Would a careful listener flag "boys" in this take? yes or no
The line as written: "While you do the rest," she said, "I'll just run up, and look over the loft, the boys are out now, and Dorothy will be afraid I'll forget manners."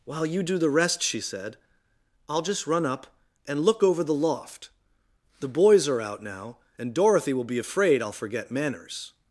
no